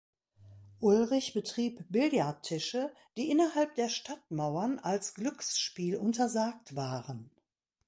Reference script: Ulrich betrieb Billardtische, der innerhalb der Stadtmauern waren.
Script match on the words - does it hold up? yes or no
no